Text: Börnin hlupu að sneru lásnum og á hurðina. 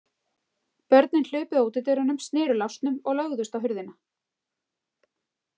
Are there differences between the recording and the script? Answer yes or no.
yes